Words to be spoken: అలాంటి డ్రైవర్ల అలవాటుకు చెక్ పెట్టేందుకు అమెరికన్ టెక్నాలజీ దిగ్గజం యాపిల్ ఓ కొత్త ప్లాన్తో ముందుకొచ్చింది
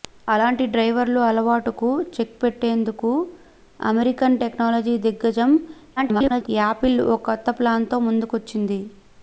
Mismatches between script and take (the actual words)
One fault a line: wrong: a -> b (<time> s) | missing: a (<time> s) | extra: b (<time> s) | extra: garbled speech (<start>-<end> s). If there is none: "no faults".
extra: garbled speech (6.0-6.5 s)